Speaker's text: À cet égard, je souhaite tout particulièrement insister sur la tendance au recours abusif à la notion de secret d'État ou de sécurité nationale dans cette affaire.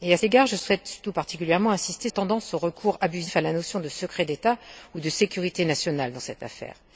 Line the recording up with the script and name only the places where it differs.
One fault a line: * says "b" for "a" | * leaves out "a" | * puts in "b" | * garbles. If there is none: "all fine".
* leaves out "cet"
* leaves out "sur la"